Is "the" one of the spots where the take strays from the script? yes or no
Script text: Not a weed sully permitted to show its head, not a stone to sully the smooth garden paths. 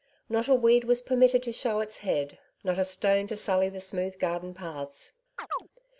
no